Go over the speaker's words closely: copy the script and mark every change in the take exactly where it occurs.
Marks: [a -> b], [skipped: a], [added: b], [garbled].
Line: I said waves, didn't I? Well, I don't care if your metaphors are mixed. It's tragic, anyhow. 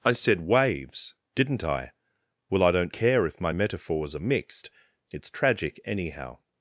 I said waves, didn't I? Well, I don't care if [your -> my] metaphors are mixed. It's tragic, anyhow.